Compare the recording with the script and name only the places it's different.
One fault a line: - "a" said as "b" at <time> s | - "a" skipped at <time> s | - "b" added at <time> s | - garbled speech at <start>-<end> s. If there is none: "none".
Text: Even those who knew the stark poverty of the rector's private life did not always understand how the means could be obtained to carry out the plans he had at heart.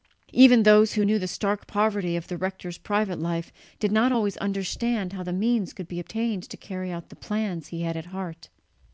none